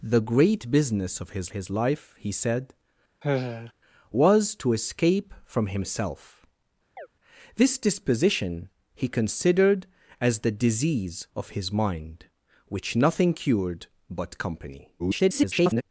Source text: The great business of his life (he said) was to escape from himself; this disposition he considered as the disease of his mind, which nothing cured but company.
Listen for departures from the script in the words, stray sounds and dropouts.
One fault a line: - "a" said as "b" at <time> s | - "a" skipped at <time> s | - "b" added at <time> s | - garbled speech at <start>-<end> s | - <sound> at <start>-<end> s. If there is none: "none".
- "his" added at 1.5 s
- sigh at 3.2-3.7 s
- chirp at 7.0-7.1 s
- garbled speech at 15.0-15.8 s